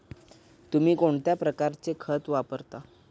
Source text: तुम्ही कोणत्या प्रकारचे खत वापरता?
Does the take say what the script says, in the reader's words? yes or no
yes